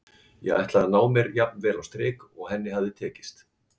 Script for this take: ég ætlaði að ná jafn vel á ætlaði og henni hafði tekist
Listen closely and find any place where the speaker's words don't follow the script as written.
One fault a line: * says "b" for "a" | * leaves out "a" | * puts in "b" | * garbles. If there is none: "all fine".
* puts in "mér"
* says "strik" for "ætlaði"